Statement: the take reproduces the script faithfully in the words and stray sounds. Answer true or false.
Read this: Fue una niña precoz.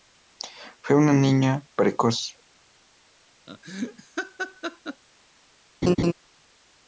false